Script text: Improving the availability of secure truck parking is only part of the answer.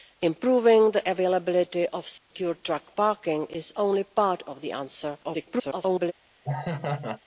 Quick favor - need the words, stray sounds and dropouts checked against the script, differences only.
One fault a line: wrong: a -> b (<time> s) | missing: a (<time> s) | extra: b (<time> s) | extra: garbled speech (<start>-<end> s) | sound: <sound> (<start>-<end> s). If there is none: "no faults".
sound: dropout (2.2-2.3 s)
extra: garbled speech (5.2-6.1 s)
sound: laugh (6.4-7.2 s)